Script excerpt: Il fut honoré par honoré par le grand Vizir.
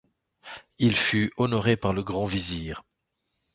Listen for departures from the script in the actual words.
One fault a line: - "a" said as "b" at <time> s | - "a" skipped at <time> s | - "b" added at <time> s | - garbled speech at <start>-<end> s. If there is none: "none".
- "honoré par" skipped at 1.9 s